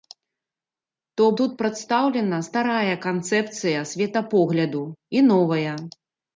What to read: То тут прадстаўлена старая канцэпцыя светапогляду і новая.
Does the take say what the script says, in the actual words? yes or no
yes